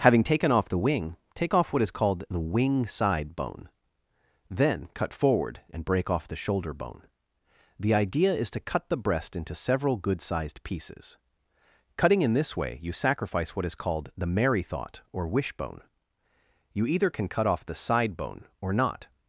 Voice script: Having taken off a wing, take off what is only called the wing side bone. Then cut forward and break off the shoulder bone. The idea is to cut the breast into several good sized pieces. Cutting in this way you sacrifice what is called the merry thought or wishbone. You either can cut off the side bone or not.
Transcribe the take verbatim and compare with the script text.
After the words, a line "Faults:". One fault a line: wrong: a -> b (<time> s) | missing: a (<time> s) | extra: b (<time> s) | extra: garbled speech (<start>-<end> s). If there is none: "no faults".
Having taken off the wing, take off what is called the wing side bone. Then cut forward and break off the shoulder bone. The idea is to cut the breast into several good sized pieces. Cutting in this way you sacrifice what is called the merry thought or wishbone. You either can cut off the side bone or not.
Faults:
wrong: a -> the (0.7 s)
missing: only (1.9 s)